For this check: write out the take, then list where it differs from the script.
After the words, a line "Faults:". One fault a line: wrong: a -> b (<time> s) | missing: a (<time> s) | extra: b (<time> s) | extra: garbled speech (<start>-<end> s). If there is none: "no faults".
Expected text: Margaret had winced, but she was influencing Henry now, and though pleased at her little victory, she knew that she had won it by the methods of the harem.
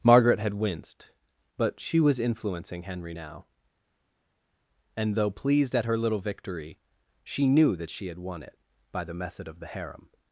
Margaret had winced, but she was influencing Henry now, and though pleased at her little victory, she knew that she had won it by the method of the harem.
Faults:
wrong: methods -> method (9.1 s)